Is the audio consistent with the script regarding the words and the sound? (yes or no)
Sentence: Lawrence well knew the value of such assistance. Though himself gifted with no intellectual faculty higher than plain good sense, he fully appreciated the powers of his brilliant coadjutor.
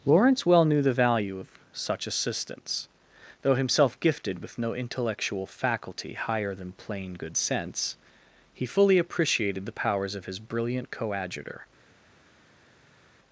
yes